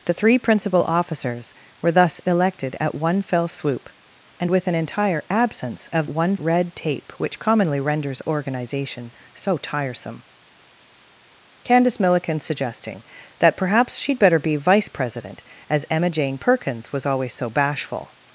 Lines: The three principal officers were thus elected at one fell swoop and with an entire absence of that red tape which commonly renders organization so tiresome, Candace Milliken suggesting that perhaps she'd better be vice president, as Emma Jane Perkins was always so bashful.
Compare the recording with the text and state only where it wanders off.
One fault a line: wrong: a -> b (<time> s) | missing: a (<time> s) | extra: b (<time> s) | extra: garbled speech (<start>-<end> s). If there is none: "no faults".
wrong: that -> one (6.1 s)